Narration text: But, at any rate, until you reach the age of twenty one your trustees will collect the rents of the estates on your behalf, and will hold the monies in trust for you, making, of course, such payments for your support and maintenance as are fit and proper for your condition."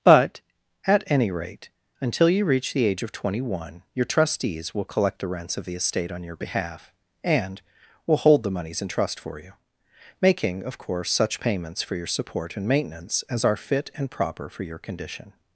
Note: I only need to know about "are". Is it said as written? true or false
true